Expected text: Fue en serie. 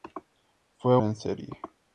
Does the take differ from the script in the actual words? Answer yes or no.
no